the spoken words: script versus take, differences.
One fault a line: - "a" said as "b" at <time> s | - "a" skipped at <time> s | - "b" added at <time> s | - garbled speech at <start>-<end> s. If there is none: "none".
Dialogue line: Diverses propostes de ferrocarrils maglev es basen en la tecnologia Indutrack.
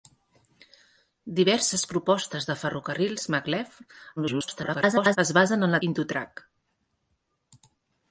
- garbled speech at 4.2-5.2 s
- "tecnologia" skipped at 5.8 s